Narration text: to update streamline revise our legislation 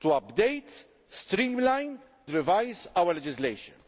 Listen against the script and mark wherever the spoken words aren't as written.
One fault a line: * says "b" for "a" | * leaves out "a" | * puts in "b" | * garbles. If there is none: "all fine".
all fine